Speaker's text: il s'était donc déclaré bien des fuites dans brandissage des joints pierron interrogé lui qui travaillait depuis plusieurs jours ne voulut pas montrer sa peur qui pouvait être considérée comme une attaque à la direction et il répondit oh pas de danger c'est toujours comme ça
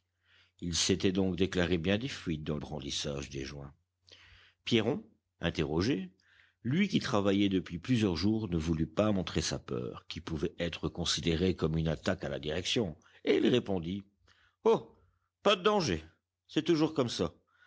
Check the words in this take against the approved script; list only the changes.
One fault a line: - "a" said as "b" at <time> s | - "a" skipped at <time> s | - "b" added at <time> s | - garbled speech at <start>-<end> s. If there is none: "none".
none